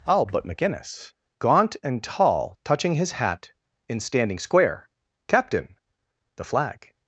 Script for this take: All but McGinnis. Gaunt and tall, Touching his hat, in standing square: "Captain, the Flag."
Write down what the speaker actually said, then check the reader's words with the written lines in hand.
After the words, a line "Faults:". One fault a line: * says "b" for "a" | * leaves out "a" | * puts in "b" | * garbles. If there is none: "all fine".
All but McGinnis. Gaunt and tall, Touching his hat, in standing square: "Captain, the Flag."
Faults:
all fine